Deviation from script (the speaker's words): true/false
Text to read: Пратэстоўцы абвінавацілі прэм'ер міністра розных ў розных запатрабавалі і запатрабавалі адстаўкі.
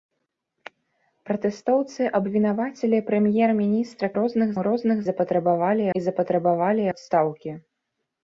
false